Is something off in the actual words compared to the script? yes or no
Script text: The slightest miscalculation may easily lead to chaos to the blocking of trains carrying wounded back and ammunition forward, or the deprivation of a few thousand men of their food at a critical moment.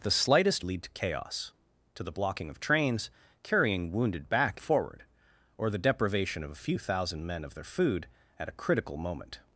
yes